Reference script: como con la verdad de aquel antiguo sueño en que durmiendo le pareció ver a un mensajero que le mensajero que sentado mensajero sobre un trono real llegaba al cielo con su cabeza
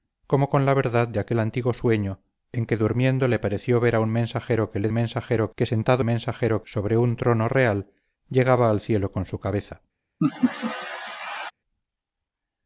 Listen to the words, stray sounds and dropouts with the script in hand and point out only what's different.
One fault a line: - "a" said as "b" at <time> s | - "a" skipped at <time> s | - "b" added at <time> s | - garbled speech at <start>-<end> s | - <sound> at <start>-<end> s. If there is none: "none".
- laugh at 10.2-11.5 s